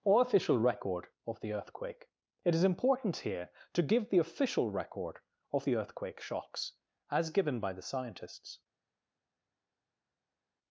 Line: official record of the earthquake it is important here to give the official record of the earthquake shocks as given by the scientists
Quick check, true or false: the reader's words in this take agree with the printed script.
false